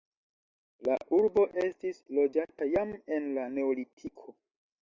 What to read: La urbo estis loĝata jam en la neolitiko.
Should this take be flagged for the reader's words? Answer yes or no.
no